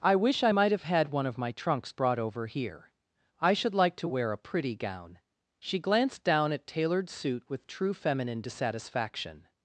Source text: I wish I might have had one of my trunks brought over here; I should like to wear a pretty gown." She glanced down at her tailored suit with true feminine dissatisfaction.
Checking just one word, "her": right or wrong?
wrong